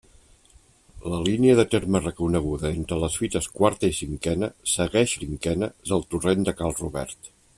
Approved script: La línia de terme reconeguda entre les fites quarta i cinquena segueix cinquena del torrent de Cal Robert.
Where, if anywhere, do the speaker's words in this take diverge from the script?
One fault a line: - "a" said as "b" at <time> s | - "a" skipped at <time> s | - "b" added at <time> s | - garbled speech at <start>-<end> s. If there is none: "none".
none